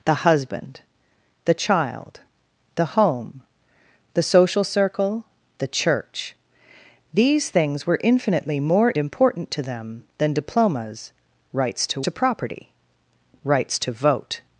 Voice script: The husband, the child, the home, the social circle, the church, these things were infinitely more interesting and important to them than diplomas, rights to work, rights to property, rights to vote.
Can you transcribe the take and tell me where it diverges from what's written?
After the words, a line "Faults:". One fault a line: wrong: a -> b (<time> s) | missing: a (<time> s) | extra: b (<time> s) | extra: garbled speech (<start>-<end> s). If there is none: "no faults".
The husband, the child, the home, the social circle, the church, these things were infinitely more important to them than diplomas, rights to to property, rights to vote.
Faults:
missing: interesting and (8.9 s)
missing: work rights (12.0 s)